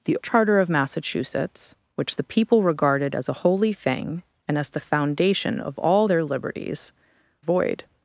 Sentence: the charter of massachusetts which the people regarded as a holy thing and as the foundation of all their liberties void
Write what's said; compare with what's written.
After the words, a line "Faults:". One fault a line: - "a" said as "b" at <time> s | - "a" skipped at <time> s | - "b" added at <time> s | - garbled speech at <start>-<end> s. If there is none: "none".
the charter of massachusetts which the people regarded as a holy thing and as the foundation of all their liberties void
Faults:
none